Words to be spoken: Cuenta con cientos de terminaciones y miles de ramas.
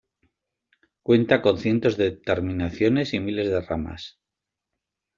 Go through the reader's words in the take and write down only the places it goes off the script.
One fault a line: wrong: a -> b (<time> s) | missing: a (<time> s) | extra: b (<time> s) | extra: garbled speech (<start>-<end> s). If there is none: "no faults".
no faults